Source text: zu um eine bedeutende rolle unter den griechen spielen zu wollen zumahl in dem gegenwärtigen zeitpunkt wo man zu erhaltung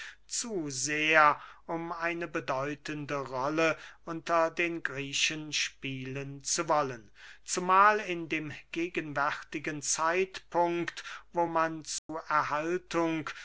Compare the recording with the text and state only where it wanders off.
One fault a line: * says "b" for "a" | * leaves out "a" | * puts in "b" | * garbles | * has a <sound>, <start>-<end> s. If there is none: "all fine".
* puts in "sehr"
* has a dropout, 12.0-12.1 s